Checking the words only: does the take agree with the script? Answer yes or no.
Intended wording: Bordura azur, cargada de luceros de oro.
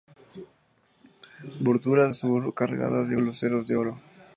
yes